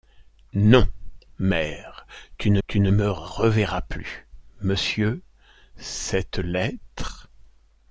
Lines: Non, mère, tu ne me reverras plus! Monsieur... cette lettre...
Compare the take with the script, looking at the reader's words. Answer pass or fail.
fail